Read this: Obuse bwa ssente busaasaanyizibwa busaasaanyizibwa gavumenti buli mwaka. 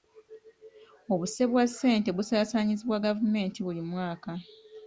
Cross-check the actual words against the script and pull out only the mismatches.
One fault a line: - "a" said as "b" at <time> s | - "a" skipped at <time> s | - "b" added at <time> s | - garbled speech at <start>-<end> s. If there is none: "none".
- "busaasaanyizibwa" skipped at 3.0 s